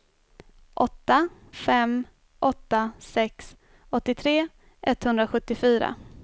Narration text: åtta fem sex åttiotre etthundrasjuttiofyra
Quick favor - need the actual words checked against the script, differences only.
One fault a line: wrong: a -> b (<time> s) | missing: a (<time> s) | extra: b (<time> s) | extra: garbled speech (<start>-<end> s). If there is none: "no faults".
extra: åtta (2.4 s)